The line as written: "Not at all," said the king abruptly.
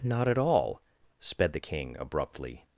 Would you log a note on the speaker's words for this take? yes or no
yes